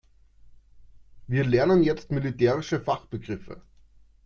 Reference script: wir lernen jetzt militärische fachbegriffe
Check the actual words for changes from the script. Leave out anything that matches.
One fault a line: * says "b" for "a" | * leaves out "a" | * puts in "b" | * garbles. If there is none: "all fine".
all fine